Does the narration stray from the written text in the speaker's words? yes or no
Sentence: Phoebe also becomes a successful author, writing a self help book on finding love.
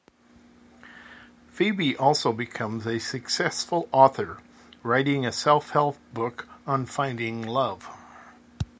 no